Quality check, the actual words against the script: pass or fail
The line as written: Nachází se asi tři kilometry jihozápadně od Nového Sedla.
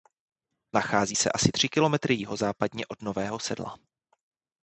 pass